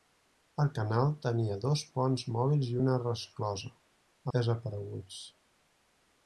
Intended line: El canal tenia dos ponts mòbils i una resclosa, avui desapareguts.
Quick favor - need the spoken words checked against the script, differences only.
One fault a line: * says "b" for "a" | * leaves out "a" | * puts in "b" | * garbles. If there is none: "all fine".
* leaves out "avui"